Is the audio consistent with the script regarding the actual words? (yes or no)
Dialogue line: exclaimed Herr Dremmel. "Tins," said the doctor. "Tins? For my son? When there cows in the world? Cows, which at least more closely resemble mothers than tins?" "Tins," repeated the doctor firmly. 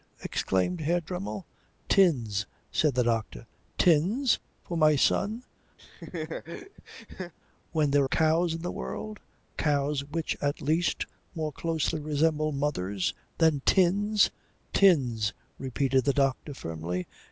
yes